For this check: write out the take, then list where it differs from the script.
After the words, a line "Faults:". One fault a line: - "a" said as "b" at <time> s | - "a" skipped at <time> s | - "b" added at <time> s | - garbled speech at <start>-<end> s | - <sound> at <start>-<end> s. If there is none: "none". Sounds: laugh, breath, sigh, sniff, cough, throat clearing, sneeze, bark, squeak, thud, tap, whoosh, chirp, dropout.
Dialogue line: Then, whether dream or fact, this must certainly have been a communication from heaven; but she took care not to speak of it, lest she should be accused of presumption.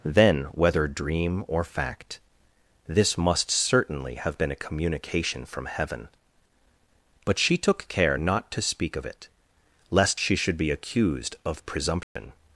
Then, whether dream or fact, this must certainly have been a communication from heaven; but she took care not to speak of it, lest she should be accused of presumption.
Faults:
- dropout at 12.0-12.2 s